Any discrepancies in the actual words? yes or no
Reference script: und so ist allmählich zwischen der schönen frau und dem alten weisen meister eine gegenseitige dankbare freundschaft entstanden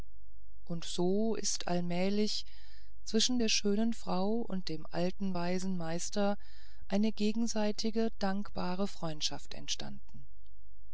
no